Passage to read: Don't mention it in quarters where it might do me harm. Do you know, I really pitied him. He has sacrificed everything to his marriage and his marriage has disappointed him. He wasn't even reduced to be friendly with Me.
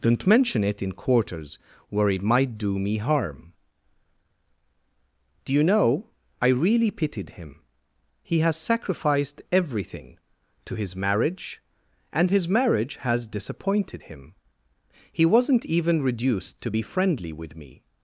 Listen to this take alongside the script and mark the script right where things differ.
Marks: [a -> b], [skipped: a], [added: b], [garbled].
Don't mention it in quarters where it might do me harm. Do you know, I really pitied him. He has sacrificed everything to his marriage and his marriage has disappointed him. He wasn't even reduced to be friendly with Me.